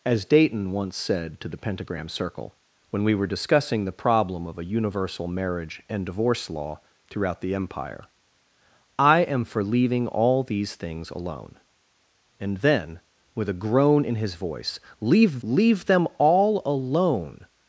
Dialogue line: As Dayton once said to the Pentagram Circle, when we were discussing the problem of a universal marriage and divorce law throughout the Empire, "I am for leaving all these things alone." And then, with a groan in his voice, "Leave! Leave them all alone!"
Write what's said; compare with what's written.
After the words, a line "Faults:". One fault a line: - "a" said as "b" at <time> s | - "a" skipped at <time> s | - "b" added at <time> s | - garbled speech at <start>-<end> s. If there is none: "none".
As Dayton once said to the Pentagram Circle, when we were discussing the problem of a universal marriage and divorce law throughout the Empire, "I am for leaving all these things alone." And then, with a groan in his voice, "Leave! Leave them all alone!"
Faults:
none